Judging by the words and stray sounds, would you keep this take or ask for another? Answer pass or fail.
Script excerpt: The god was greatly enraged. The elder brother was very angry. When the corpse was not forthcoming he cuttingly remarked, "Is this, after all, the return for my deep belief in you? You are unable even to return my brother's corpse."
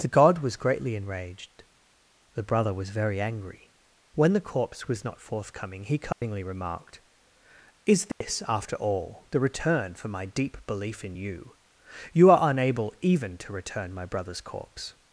fail